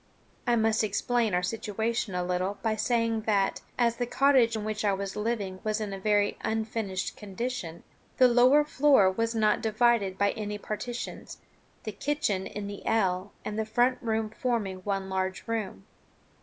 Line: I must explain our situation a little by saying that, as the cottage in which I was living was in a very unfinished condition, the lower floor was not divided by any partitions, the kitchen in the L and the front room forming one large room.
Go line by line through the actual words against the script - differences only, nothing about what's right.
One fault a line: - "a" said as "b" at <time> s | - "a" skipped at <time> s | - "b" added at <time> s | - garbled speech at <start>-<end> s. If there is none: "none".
none